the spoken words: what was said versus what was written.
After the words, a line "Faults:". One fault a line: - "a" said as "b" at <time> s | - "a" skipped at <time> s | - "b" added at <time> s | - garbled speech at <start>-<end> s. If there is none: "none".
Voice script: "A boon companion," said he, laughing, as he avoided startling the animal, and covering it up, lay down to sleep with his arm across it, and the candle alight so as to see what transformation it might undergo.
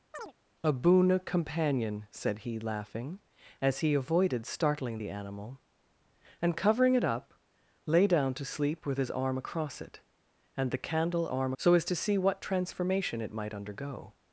"A boon companion," said he, laughing, as he avoided startling the animal, and covering it up, lay down to sleep with his arm across it, and the candle arm so as to see what transformation it might undergo.
Faults:
- "alight" said as "arm" at 11.3 s